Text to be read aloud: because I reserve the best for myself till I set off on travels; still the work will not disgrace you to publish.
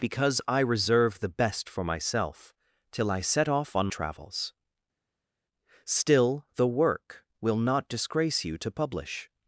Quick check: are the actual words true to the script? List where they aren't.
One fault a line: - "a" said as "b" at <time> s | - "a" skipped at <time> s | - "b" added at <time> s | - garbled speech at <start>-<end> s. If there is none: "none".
none